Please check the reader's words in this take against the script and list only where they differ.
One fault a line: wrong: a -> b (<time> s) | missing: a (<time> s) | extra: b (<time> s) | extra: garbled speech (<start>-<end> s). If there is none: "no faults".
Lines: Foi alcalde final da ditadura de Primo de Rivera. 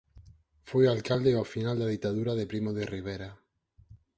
extra: ao (1.4 s)